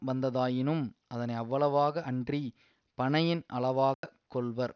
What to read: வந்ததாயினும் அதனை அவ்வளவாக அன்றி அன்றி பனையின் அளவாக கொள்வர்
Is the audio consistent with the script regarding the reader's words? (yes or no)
no